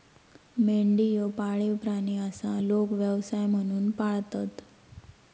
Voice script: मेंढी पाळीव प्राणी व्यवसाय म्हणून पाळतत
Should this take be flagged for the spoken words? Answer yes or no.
yes